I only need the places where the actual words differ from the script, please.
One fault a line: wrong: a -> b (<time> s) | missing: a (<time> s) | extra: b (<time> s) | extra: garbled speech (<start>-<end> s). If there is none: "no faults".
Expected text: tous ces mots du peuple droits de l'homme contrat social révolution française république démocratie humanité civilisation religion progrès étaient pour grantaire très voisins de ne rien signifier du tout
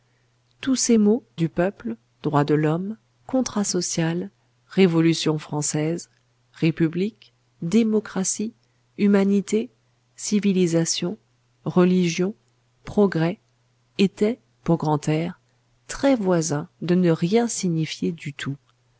no faults